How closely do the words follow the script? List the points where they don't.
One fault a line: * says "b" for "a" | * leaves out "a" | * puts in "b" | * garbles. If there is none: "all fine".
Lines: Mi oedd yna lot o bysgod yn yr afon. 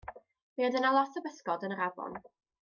all fine